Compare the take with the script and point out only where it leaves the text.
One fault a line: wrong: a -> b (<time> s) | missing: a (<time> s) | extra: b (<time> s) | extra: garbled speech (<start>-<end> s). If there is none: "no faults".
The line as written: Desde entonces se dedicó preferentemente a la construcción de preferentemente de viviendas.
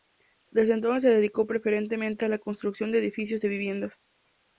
wrong: preferentemente -> edificios (3.0 s)